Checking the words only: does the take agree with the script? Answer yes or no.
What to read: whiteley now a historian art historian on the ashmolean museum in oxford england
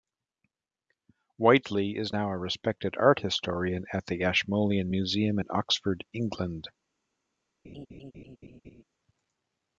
no